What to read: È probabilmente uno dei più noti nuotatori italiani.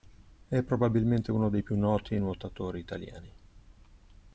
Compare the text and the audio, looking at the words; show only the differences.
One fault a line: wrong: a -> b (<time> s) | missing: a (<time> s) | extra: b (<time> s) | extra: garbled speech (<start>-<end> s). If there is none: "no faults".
no faults